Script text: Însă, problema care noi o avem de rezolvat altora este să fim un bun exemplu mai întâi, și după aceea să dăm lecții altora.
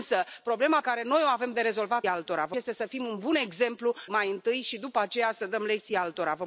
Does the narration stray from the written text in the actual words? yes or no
no